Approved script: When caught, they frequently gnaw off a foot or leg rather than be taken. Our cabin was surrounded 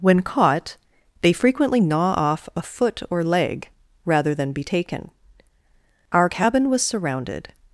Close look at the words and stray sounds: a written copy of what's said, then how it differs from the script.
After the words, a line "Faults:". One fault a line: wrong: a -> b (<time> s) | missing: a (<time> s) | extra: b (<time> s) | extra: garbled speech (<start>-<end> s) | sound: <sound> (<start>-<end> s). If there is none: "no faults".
When caught, they frequently gnaw off a foot or leg rather than be taken. Our cabin was surrounded
Faults:
no faults